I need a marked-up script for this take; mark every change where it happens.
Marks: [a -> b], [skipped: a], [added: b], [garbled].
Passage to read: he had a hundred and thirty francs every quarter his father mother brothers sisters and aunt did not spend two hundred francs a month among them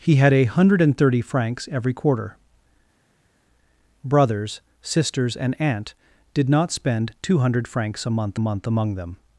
he had a hundred and thirty francs every quarter [skipped: his father mother] brothers sisters and aunt did not spend two hundred francs a month [added: month] among them